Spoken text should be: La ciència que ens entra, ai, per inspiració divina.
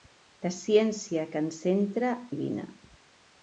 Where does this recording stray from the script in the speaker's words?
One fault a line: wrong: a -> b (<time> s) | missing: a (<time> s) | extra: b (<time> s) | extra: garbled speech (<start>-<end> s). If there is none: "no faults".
missing: ai per inspiració (2.1 s)